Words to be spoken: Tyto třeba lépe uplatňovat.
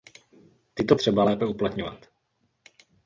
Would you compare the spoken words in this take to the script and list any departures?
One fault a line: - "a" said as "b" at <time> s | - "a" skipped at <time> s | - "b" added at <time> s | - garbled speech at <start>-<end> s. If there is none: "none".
none